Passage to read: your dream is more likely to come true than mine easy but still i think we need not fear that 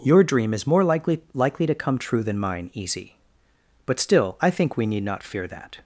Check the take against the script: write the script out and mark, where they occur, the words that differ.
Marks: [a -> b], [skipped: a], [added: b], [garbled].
your dream is more likely [added: likely] to come true than mine easy but still i think we need not fear that